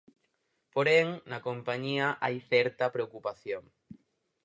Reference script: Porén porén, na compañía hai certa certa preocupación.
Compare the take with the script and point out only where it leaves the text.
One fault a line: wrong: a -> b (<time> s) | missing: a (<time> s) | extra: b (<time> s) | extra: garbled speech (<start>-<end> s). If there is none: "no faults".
missing: porén (1.1 s)
missing: certa (2.9 s)